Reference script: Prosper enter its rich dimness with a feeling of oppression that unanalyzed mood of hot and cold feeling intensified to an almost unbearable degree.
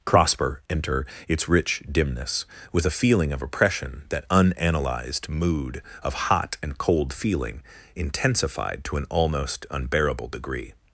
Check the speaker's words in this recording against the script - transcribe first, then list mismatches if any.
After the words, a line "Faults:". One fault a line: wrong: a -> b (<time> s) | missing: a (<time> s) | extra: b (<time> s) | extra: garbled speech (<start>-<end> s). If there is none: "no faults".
Prosper enter its rich dimness with a feeling of oppression that unanalyzed mood of hot and cold feeling intensified to an almost unbearable degree.
Faults:
no faults